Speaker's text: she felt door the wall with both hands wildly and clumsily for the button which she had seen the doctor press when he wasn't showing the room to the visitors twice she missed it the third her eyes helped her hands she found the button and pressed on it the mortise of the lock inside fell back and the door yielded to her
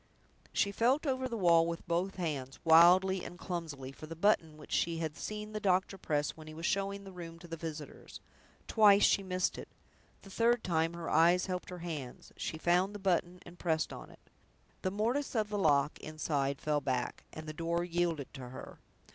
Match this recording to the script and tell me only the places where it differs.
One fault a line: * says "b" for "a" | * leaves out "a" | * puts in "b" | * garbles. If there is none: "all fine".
* says "over" for "door"
* says "was" for "wasn't"
* puts in "time"